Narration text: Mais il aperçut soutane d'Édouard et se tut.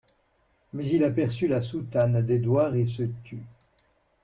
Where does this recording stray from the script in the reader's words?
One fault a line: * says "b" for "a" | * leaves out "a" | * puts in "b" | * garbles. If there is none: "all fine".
* puts in "la"